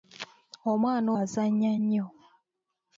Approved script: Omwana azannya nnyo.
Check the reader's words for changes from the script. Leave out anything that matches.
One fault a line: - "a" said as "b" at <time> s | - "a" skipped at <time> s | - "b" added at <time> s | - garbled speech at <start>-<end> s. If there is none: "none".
none